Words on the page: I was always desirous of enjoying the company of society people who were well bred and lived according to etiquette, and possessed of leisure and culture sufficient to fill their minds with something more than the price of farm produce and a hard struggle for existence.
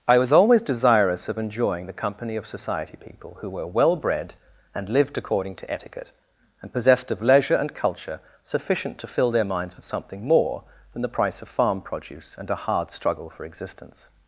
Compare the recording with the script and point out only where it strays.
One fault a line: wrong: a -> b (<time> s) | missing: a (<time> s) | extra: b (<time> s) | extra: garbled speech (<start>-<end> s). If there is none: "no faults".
no faults